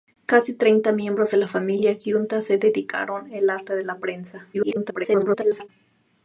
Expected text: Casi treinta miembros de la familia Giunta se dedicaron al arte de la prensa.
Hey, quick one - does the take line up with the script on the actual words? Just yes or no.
no